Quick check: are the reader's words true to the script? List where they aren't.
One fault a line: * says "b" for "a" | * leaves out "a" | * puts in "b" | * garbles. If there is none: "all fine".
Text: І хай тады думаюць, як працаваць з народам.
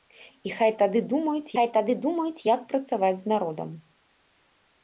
* puts in "хай тады думаюць"